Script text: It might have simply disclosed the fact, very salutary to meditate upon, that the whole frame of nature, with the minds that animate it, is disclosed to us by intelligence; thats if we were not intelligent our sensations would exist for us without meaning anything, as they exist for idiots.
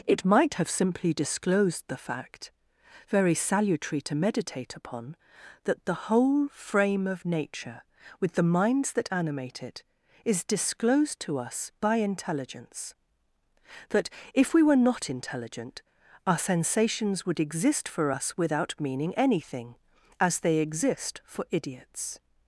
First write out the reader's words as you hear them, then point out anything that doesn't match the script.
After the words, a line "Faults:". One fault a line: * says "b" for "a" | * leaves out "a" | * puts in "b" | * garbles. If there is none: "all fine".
It might have simply disclosed the fact, very salutary to meditate upon, that the whole frame of nature, with the minds that animate it, is disclosed to us by intelligence; that if we were not intelligent our sensations would exist for us without meaning anything, as they exist for idiots.
Faults:
* says "that" for "thats"